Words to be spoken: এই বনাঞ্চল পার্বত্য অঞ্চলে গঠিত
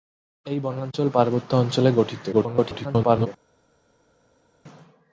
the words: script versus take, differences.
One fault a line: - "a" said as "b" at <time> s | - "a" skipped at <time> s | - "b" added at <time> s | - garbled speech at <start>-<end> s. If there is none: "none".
- garbled speech at 2.3-3.3 s